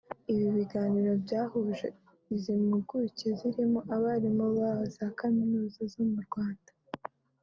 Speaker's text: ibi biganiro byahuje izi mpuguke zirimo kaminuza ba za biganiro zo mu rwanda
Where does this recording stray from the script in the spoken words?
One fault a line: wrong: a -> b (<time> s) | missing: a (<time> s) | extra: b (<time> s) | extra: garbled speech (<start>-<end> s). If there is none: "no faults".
wrong: kaminuza -> abarimu (3.9 s)
wrong: biganiro -> kaminuza (5.2 s)